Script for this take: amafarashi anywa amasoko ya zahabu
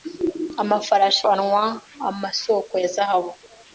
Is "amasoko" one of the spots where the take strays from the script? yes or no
no